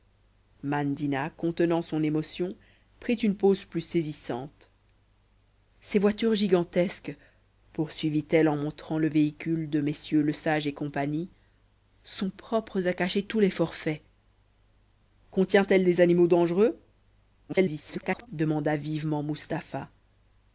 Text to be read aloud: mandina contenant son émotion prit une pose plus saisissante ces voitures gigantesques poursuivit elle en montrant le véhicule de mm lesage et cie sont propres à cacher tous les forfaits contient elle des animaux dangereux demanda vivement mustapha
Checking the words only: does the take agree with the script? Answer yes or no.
no